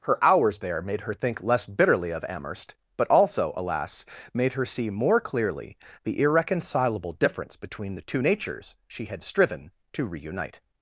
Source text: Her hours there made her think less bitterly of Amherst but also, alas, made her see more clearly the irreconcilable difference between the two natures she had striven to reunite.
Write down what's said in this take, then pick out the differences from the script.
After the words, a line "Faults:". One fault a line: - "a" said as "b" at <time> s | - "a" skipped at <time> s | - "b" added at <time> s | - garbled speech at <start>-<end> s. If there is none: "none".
Her hours there made her think less bitterly of Amherst but also, alas, made her see more clearly the irreconcilable difference between the two natures she had striven to reunite.
Faults:
none